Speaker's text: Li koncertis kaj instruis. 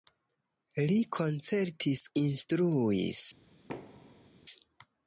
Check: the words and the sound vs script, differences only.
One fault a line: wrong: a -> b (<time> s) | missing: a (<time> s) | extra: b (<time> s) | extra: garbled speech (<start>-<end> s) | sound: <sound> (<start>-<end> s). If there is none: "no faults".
missing: kaj (2.0 s)
sound: thud (3.7-4.3 s)